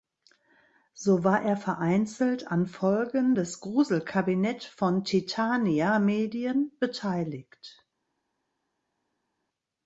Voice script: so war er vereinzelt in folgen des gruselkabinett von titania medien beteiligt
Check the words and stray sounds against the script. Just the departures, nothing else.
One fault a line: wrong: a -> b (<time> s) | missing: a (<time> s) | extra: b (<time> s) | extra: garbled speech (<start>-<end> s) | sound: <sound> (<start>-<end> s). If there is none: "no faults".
wrong: in -> an (2.5 s)